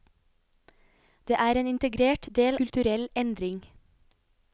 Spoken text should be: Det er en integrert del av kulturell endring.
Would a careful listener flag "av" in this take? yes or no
yes